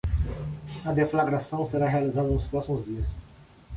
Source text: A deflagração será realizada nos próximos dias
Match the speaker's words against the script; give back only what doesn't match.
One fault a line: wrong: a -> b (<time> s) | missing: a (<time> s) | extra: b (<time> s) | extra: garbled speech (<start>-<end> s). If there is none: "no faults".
no faults